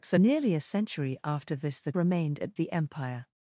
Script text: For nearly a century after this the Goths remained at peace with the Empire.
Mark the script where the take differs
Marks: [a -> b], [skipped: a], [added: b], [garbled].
For nearly a century after this the [skipped: Goths] remained at [skipped: peace with] the Empire.